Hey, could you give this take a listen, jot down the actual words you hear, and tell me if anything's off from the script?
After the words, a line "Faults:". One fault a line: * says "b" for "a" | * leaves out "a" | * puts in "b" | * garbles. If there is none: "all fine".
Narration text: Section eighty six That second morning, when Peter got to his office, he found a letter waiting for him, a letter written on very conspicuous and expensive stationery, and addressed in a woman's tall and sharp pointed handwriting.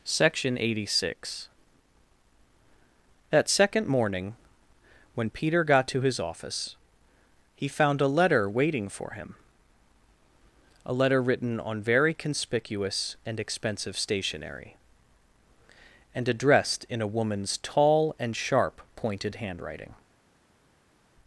Section eighty six That second morning, when Peter got to his office, he found a letter waiting for him, a letter written on very conspicuous and expensive stationery, and addressed in a woman's tall and sharp pointed handwriting.
Faults:
all fine